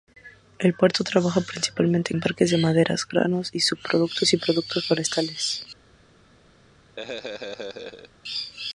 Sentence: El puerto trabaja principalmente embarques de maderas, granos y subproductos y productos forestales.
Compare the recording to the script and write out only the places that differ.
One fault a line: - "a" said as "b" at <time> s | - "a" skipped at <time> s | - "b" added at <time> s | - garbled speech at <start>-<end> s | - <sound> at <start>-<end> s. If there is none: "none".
- laugh at 7.0-8.1 s